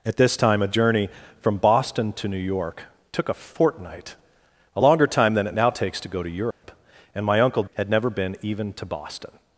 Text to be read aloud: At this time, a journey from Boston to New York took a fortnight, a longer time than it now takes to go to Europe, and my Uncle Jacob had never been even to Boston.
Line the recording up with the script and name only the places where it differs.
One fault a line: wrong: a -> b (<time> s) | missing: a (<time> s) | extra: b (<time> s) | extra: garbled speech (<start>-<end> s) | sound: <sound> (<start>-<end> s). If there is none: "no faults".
sound: dropout (6.5-6.6 s)
missing: Jacob (7.6 s)